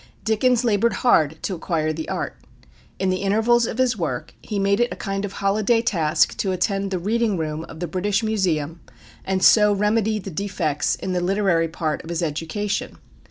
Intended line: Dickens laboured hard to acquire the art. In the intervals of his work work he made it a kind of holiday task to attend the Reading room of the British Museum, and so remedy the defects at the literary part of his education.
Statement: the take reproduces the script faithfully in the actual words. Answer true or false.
false